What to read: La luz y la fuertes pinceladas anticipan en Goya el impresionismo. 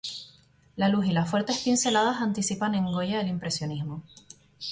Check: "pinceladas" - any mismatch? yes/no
no